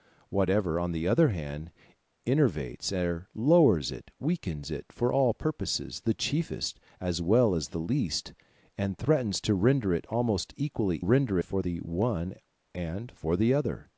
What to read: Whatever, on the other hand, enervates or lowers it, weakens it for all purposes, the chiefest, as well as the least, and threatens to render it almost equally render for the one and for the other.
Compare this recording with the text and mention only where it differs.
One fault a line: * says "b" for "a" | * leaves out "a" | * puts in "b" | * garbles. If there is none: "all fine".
all fine